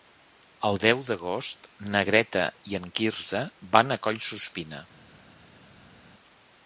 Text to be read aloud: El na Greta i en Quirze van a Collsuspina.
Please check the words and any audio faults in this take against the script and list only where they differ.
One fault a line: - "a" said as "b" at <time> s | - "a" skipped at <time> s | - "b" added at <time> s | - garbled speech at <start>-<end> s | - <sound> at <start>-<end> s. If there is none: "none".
- "deu d'agost" added at 0.8 s